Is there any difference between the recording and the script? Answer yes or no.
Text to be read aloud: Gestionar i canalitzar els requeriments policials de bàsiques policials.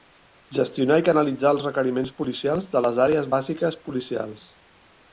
yes